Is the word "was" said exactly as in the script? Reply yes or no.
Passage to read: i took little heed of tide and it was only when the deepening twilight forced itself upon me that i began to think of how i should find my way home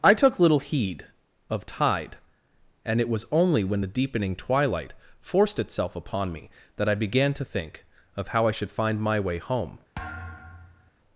yes